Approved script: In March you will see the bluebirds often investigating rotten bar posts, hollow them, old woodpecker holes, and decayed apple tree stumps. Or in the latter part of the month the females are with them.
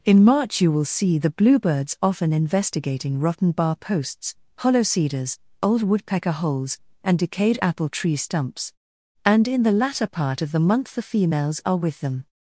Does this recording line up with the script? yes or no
no